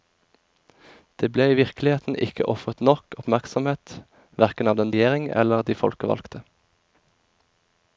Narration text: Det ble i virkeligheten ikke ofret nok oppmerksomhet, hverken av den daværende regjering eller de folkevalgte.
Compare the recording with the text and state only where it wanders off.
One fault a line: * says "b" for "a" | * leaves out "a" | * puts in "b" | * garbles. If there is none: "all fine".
* leaves out "daværende"